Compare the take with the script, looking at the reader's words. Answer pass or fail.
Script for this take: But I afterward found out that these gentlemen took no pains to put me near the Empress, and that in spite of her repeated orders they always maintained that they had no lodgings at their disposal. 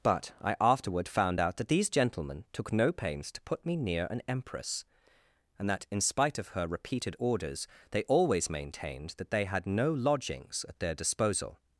fail